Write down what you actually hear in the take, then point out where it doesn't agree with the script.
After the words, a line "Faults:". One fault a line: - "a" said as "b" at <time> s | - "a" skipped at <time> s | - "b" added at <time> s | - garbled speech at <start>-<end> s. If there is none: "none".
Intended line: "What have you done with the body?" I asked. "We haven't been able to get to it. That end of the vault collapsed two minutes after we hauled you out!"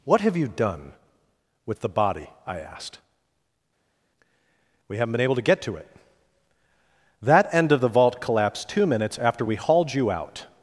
"What have you done with the body?" I asked. "We haven't been able to get to it. That end of the vault collapsed two minutes after we hauled you out!"
Faults:
none